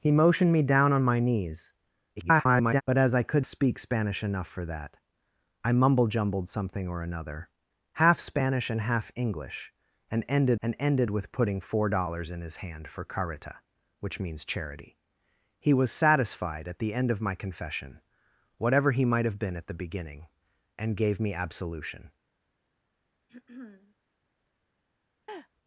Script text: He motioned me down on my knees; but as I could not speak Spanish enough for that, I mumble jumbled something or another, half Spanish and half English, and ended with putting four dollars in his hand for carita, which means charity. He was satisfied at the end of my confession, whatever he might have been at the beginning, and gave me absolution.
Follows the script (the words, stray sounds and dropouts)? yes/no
no